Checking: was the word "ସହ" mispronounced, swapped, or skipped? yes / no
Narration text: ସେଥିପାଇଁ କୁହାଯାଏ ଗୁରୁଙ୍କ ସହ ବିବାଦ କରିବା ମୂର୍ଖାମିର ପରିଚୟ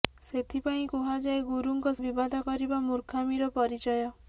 yes